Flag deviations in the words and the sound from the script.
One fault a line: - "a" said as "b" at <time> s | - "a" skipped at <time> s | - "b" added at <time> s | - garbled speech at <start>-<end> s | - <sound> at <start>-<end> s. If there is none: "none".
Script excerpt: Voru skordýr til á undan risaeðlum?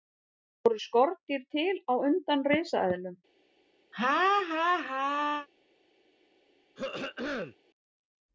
- laugh at 3.9-5.5 s
- throat clearing at 6.8-7.6 s